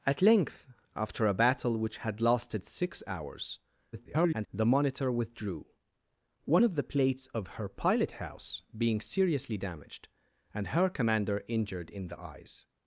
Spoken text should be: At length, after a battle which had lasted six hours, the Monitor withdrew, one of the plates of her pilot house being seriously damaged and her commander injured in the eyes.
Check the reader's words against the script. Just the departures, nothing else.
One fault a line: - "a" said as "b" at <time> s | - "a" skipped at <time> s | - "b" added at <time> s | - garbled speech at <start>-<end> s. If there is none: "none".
- garbled speech at 3.9-4.5 s